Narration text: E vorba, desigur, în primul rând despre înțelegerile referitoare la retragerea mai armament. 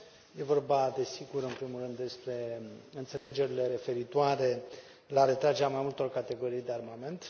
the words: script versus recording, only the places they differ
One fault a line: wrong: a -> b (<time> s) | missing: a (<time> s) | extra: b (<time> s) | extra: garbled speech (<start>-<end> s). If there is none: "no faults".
extra: multor categorii de (5.8 s)